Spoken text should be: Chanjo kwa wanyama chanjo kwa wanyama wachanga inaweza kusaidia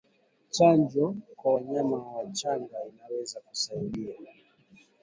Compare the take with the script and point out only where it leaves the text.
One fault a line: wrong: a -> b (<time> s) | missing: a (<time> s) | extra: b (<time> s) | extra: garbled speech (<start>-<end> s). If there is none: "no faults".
missing: chanjo kwa wanyama (2.0 s)